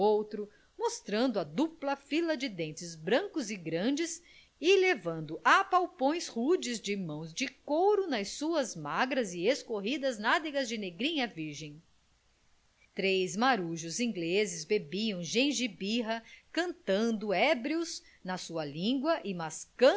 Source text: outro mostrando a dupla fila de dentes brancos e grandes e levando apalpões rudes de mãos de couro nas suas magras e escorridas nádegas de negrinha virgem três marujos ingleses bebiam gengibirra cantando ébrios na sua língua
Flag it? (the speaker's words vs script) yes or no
no